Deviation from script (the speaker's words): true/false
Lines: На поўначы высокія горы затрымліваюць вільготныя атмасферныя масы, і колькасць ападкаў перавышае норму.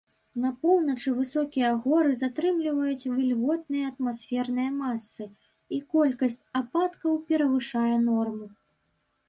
false